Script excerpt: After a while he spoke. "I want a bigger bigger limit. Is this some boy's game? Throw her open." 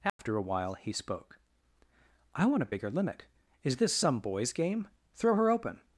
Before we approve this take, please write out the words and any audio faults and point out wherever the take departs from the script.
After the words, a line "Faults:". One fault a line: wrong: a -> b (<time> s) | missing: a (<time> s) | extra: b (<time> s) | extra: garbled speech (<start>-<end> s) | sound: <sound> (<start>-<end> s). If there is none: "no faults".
After a while he spoke. "I want a bigger limit. Is this some boy's game? Throw her open."
Faults:
sound: dropout (0.1-0.2 s)
missing: bigger (2.9 s)